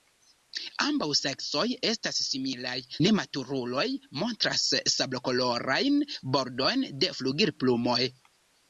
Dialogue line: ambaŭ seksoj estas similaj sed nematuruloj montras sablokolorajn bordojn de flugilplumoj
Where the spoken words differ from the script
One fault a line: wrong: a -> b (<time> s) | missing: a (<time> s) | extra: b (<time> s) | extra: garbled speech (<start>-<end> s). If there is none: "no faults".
missing: sed (2.7 s)